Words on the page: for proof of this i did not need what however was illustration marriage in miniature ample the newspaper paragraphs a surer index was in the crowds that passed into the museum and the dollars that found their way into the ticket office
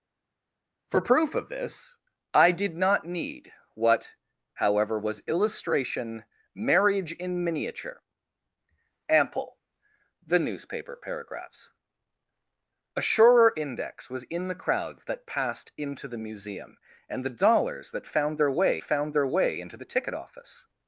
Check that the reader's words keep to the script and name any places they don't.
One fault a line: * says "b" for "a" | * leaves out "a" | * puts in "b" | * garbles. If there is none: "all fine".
* puts in "found their way"